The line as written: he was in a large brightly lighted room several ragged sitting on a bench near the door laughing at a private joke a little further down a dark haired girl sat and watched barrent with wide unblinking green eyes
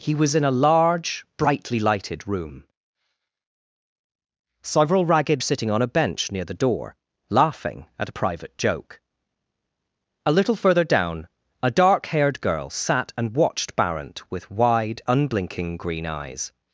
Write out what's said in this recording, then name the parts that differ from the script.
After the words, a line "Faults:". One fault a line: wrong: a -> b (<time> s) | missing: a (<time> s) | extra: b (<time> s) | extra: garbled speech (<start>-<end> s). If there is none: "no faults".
he was in a large brightly lighted room several ragged sitting on a bench near the door laughing at a private joke a little further down a dark haired girl sat and watched barrent with wide unblinking green eyes
Faults:
no faults